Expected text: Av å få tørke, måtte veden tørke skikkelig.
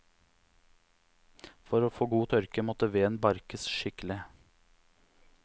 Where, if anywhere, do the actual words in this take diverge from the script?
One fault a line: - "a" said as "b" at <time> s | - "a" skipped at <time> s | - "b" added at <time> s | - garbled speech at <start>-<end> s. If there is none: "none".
- "Av" said as "For" at 1.7 s
- "god" added at 2.1 s
- "tørke" said as "barkes" at 3.3 s